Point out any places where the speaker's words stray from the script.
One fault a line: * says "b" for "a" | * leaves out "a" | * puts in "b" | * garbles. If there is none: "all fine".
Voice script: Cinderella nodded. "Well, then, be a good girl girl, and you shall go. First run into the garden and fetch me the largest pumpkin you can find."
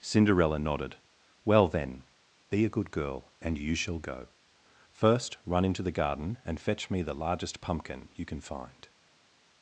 * leaves out "girl"